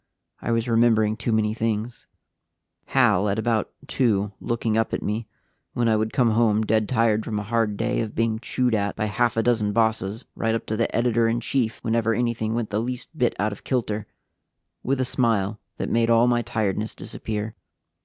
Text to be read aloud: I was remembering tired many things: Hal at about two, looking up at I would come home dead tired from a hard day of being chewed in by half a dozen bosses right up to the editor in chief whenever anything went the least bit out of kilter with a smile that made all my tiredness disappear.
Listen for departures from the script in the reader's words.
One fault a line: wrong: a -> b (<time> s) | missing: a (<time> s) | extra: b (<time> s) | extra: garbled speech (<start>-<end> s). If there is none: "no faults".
wrong: tired -> too (1.1 s)
extra: me when (5.0 s)
wrong: in -> at (8.7 s)